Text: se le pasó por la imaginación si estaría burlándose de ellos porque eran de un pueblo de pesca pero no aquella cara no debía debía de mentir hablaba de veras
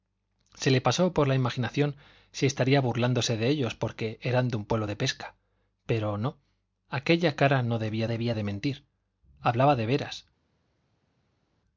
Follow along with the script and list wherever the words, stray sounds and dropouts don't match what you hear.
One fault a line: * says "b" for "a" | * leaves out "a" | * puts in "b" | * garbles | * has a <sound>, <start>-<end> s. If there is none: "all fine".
all fine